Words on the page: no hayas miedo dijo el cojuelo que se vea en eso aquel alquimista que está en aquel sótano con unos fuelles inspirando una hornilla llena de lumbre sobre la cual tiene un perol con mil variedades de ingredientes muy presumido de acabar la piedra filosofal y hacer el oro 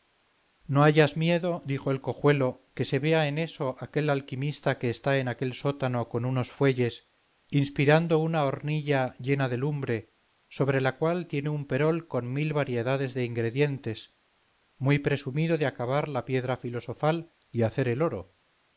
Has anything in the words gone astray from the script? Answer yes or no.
no